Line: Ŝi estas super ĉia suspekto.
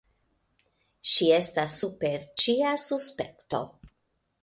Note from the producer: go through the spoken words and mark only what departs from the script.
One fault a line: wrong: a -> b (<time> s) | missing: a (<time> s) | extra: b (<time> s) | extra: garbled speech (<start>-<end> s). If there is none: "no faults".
no faults